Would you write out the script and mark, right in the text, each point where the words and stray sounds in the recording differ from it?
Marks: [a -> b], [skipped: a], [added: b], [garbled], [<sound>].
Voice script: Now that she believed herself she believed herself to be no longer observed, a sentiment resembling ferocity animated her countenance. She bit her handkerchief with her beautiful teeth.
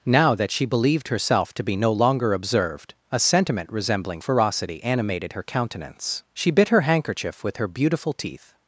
Now that she believed herself [skipped: she believed herself] to be no longer observed, a sentiment resembling ferocity animated her countenance. She bit her handkerchief with her beautiful teeth.